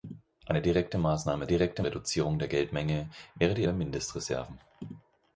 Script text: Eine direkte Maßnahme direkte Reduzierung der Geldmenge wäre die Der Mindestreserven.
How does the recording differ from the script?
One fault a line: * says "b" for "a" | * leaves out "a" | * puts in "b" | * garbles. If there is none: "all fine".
all fine